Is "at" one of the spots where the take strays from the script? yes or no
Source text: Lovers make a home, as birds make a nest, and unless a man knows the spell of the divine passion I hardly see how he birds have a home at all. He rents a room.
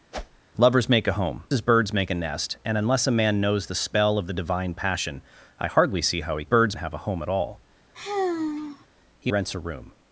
no